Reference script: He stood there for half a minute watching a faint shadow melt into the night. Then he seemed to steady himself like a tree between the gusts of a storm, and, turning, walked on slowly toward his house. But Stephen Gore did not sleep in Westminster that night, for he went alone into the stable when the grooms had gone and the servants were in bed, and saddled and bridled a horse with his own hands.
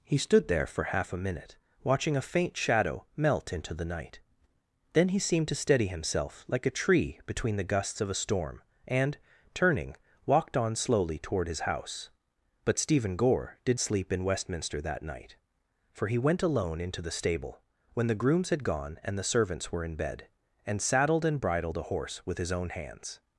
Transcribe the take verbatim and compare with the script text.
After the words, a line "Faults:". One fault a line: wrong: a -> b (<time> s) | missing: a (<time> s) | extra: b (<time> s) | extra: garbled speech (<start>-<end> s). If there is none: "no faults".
He stood there for half a minute watching a faint shadow melt into the night. Then he seemed to steady himself like a tree between the gusts of a storm, and, turning, walked on slowly toward his house. But Stephen Gore did sleep in Westminster that night, for he went alone into the stable when the grooms had gone and the servants were in bed, and saddled and bridled a horse with his own hands.
Faults:
missing: not (13.8 s)